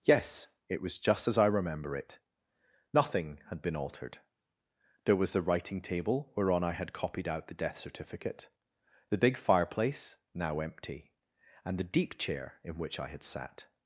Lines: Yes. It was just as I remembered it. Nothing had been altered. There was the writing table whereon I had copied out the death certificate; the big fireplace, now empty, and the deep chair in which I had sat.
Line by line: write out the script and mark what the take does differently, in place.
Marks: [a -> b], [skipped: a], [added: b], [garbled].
Yes. It was just as I [remembered -> remember] it. Nothing had been altered. There was the writing table whereon I had copied out the death certificate; the big fireplace, now empty, and the deep chair in which I had sat.